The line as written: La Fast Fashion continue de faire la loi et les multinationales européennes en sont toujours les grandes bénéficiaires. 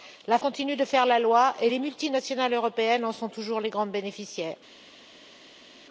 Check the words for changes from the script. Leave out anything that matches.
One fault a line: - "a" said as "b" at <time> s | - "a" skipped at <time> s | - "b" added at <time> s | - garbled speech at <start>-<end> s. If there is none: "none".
- "Fast Fashion" skipped at 0.4 s